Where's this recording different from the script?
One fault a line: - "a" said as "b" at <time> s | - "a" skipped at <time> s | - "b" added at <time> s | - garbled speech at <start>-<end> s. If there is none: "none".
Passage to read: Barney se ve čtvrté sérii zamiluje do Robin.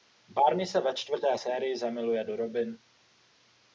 none